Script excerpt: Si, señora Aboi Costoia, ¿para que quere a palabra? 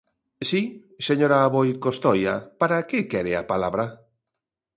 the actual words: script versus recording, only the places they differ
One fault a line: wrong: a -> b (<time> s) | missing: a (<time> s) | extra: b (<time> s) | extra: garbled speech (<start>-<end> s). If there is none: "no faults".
no faults